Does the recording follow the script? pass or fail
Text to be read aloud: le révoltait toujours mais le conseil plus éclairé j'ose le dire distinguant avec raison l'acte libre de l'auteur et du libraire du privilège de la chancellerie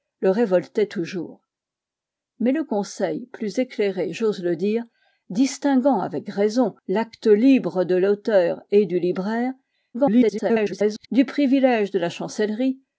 fail